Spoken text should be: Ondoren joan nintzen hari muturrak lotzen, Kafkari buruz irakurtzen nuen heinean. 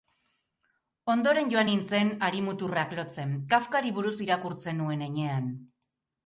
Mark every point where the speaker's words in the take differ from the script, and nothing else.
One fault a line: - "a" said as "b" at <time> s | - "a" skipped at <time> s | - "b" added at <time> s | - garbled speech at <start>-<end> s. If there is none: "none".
none